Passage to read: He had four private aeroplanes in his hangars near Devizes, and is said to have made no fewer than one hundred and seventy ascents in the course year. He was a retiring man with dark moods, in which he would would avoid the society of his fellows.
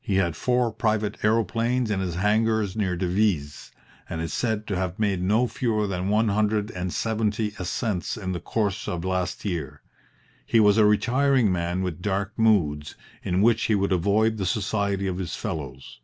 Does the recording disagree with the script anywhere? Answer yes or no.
yes